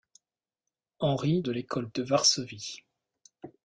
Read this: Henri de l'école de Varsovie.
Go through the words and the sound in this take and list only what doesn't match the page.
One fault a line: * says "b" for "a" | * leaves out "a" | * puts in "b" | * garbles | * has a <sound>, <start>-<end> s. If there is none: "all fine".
all fine